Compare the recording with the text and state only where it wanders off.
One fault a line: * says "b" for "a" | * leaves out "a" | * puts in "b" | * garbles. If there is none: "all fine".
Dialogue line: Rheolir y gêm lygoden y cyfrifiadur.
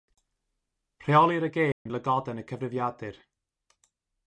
all fine